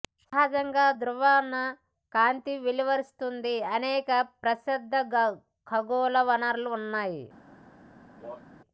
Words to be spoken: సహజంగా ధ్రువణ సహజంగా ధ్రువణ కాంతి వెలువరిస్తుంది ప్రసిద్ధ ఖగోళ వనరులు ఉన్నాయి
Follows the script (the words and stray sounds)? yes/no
no